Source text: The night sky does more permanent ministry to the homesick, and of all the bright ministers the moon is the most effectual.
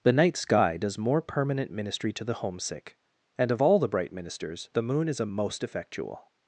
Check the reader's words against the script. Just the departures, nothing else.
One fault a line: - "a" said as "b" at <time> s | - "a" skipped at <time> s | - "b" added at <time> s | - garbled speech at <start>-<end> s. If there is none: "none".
- "the" said as "a" at 5.2 s